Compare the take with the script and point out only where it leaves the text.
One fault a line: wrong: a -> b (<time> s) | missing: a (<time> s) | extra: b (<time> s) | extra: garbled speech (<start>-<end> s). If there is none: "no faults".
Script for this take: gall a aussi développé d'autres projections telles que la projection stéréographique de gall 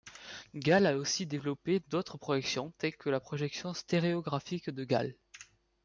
no faults